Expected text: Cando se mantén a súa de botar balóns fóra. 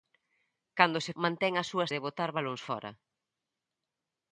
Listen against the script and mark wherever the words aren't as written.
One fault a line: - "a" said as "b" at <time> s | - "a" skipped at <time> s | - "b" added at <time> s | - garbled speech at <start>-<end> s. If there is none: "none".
none